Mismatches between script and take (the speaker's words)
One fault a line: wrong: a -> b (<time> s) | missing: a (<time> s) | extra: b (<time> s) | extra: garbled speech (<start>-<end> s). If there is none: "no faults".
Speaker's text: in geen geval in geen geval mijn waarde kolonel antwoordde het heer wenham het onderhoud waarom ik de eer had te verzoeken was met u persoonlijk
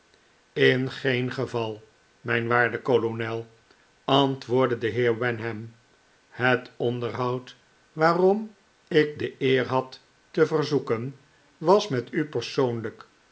missing: in geen geval (1.9 s)
wrong: het -> de (4.8 s)